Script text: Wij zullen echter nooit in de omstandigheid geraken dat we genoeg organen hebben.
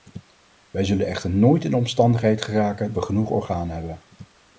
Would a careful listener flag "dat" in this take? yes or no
yes